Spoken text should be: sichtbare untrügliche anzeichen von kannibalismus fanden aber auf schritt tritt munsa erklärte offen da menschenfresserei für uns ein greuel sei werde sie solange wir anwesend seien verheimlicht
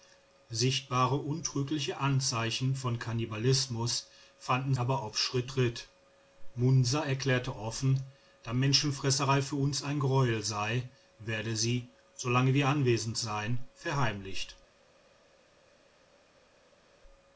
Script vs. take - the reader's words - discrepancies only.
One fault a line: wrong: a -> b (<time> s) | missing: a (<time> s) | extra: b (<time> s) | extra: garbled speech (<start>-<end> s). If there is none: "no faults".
no faults